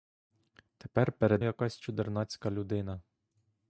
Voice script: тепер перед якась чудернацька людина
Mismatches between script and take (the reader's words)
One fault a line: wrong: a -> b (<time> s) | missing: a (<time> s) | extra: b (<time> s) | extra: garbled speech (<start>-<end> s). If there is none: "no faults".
no faults